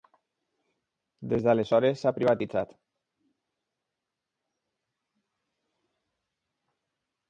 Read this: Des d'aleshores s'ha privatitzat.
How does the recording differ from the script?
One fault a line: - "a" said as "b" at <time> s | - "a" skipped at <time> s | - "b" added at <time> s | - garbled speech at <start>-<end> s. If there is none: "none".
none